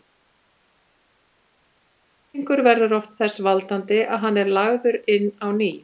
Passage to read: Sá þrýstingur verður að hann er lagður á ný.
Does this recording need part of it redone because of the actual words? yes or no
yes